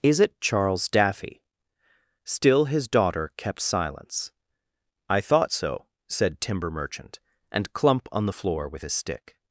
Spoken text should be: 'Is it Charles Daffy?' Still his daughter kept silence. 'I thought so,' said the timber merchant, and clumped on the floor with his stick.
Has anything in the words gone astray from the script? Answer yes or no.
yes